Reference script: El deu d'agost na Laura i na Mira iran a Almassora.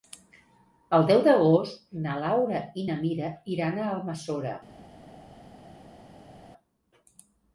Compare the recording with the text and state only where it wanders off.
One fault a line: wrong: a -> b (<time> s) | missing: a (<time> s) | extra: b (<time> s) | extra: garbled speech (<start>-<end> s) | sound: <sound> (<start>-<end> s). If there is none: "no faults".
no faults